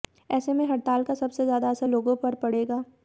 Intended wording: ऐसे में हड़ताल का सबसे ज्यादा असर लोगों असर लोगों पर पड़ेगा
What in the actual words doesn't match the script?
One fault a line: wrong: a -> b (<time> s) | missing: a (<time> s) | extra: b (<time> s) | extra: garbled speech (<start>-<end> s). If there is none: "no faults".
missing: असर लोगों (2.2 s)